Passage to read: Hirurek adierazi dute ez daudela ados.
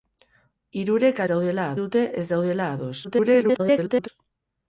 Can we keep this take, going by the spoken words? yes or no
no